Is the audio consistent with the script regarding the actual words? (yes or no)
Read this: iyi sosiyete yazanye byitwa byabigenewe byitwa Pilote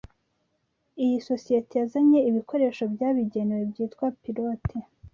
no